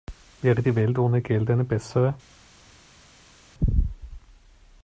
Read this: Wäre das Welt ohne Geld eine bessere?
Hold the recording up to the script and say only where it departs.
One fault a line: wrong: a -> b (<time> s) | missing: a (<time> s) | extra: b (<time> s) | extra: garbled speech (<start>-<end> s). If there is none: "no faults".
wrong: das -> die (0.6 s)